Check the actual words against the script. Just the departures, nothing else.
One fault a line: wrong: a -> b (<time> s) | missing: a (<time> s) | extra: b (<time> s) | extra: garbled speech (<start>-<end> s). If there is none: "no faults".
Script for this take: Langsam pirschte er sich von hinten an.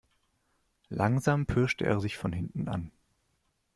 no faults